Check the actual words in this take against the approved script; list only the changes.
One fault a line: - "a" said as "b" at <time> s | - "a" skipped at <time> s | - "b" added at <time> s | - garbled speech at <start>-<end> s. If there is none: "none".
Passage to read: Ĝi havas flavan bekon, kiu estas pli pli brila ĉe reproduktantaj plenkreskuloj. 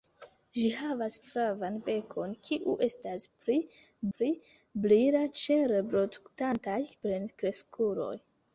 none